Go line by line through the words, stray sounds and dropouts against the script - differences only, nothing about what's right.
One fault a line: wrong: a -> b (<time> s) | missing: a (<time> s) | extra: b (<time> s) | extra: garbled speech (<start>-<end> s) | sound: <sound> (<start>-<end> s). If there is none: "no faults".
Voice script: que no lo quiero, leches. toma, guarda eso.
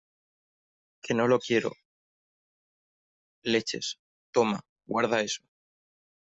no faults